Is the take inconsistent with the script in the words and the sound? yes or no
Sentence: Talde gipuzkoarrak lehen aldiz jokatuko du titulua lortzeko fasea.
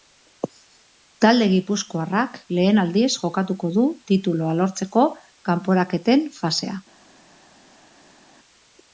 yes